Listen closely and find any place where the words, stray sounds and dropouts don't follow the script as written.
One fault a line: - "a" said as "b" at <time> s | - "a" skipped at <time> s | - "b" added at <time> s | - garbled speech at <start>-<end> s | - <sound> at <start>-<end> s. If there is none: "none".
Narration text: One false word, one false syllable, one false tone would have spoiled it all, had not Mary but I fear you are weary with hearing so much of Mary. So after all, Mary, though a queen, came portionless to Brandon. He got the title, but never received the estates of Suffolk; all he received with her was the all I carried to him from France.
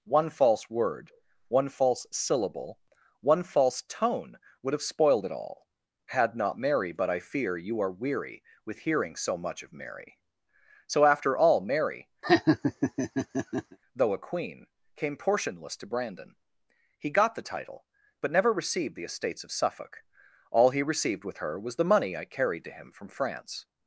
- laugh at 12.2-13.8 s
- "all" said as "money" at 21.9 s